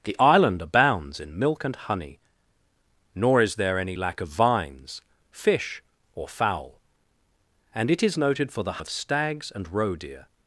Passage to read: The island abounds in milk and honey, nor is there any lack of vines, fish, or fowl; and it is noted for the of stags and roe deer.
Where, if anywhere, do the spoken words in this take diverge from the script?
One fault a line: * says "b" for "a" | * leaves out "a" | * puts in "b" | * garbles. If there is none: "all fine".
all fine